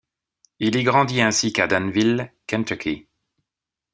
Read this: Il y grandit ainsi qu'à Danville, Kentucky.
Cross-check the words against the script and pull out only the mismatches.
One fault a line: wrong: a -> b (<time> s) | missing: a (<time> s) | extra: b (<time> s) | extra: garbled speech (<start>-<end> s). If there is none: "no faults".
no faults